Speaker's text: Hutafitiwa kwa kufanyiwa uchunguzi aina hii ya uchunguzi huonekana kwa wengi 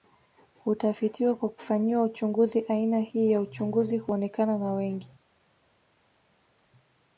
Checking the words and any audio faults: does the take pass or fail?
fail